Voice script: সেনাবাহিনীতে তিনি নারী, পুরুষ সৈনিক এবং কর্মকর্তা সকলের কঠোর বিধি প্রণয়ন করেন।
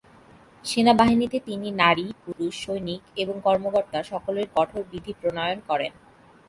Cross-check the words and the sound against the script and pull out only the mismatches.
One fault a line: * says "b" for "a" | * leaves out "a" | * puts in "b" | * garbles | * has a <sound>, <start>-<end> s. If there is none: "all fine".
* has a dropout, 2.3-2.4 s